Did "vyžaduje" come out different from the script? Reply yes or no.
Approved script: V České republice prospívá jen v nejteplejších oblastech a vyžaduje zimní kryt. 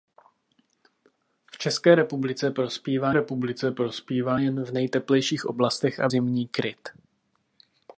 yes